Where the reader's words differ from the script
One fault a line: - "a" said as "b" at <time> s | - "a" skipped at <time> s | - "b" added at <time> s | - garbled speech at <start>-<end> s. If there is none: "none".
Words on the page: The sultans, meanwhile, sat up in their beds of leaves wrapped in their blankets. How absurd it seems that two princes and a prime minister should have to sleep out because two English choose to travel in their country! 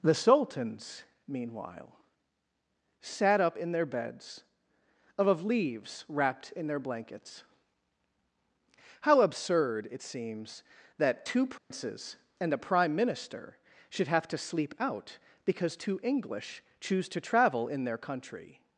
- "of" added at 5.3 s